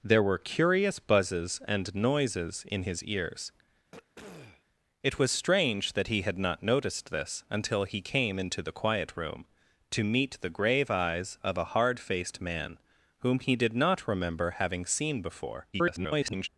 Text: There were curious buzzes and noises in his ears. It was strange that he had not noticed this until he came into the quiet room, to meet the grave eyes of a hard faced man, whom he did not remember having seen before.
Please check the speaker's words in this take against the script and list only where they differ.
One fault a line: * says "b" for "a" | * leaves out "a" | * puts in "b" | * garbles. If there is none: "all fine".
* garbles